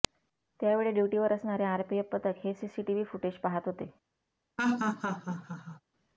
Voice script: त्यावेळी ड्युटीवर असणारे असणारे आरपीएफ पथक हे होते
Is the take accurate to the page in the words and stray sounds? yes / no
no